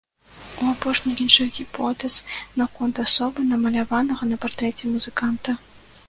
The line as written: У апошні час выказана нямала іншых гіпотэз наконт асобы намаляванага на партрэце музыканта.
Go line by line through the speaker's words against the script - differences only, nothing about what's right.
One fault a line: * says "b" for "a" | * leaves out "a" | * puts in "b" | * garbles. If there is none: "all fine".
* leaves out "час выказана нямала"